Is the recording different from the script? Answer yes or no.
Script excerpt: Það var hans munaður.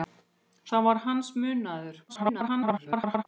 yes